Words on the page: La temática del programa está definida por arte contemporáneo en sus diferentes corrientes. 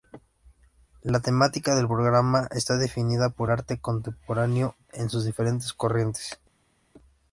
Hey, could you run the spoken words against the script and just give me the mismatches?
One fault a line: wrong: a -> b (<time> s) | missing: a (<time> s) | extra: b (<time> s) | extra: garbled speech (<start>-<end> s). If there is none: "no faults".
no faults